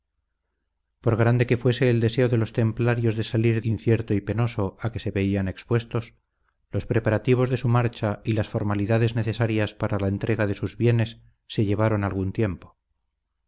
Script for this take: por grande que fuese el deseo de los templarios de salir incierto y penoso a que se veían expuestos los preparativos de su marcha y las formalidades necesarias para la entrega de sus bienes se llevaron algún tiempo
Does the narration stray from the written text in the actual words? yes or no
no